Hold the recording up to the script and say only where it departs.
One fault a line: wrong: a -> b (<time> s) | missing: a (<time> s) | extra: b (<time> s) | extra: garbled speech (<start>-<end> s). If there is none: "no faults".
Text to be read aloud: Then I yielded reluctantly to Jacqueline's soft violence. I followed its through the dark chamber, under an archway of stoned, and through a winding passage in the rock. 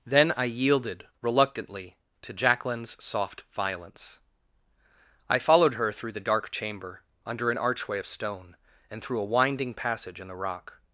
wrong: its -> her (5.8 s)
wrong: stoned -> stone (8.1 s)